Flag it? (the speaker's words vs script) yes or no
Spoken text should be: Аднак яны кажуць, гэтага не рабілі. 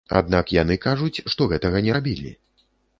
yes